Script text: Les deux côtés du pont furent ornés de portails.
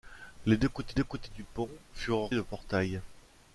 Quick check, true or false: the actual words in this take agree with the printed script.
false